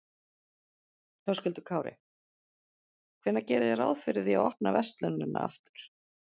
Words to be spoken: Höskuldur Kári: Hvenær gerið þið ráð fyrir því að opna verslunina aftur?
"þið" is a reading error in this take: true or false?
false